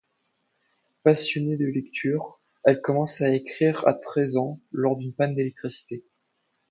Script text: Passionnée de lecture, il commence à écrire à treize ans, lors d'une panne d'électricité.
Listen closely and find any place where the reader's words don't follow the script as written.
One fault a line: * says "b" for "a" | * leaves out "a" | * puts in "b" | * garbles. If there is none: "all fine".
* says "elle" for "il"